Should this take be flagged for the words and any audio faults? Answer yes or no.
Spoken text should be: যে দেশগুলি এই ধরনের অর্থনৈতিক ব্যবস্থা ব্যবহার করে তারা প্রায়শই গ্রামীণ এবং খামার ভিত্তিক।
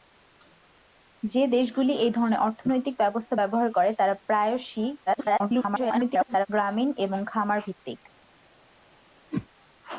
yes